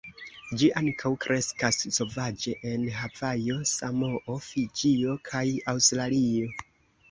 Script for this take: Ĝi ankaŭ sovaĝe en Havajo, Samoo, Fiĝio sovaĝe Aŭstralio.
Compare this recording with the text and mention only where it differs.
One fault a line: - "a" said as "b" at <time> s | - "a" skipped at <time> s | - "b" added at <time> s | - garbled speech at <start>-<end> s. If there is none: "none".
- "kreskas" added at 1.3 s
- "sovaĝe" said as "kaj" at 5.3 s